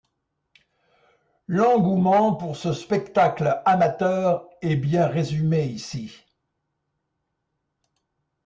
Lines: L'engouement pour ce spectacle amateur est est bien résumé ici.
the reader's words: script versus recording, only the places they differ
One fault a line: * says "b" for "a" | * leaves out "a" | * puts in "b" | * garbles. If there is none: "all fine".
* leaves out "est"